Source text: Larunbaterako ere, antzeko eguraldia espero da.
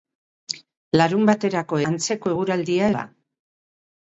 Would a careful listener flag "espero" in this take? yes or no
yes